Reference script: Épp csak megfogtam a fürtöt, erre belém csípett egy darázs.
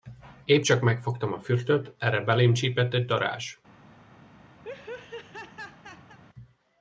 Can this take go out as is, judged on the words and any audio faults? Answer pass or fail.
fail